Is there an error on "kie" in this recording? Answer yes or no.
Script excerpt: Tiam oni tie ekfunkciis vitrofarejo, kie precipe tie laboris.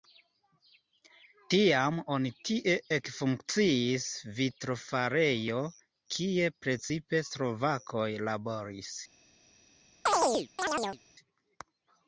no